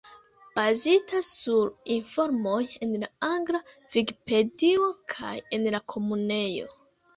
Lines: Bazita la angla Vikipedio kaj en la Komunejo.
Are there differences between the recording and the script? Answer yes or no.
yes